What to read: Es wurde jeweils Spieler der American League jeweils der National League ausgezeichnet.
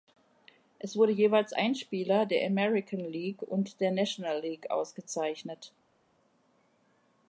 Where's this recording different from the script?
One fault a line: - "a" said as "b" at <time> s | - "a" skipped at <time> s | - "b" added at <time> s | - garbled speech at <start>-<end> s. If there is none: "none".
- "ein" added at 1.5 s
- "jeweils" said as "und" at 3.4 s